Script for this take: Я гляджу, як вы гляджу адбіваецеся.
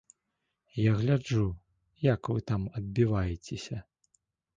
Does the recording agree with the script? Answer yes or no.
no